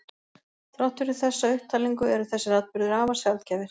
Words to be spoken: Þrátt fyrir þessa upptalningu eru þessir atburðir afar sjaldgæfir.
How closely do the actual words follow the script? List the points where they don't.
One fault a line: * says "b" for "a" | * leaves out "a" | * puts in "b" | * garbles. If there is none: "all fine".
all fine